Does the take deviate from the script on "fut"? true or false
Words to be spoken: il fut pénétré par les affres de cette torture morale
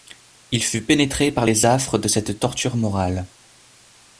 false